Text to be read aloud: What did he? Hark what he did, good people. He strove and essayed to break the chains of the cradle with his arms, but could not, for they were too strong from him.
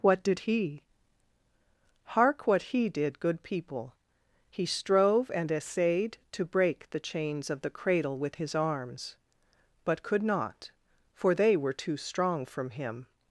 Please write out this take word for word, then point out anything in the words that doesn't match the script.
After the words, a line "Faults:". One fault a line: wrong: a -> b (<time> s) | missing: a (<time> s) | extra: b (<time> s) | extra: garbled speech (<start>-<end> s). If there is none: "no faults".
What did he? Hark what he did, good people. He strove and essayed to break the chains of the cradle with his arms, but could not, for they were too strong from him.
Faults:
no faults